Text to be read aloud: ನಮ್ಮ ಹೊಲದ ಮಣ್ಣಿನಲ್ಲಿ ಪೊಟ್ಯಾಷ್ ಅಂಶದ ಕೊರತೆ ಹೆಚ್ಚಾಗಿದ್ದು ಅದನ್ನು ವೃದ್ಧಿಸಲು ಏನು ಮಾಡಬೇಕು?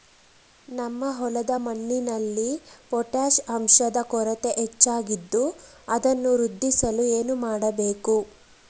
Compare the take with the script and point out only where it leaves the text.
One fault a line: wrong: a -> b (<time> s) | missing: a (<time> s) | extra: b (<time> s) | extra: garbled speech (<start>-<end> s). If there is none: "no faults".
no faults